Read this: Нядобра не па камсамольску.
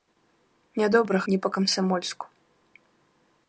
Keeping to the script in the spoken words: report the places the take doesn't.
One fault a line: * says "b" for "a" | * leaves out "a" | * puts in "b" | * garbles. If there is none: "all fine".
all fine